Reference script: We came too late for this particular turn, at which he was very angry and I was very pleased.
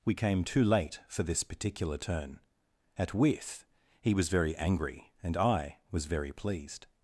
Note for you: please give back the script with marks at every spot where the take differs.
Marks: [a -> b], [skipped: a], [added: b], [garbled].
We came too late for this particular turn, at [which -> with] he was very angry and I was very pleased.